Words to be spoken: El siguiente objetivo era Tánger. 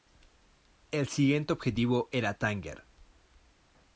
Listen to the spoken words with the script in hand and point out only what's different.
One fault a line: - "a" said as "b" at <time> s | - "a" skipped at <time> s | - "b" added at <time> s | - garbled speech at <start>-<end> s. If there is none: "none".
none